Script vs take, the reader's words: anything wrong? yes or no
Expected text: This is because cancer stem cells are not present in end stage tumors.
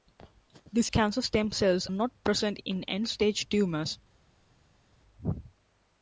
yes